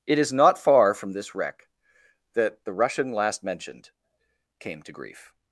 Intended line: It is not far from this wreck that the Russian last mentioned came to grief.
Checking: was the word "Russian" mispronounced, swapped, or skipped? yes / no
no